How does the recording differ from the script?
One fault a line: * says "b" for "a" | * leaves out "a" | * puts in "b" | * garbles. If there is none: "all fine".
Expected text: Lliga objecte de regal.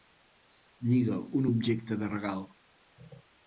* puts in "un"